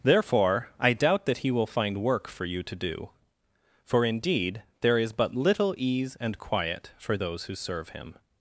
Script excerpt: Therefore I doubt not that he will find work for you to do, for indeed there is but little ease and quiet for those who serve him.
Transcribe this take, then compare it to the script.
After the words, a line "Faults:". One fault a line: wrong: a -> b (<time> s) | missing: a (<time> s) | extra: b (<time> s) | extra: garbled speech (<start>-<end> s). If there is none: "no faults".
Therefore I doubt that he will find work for you to do, for indeed there is but little ease and quiet for those who serve him.
Faults:
missing: not (1.2 s)